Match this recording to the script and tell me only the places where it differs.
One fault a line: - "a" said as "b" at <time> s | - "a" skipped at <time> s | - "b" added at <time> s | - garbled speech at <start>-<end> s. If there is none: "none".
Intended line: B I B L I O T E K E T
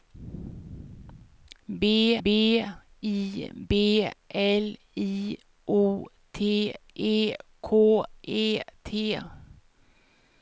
- "b" added at 2.2 s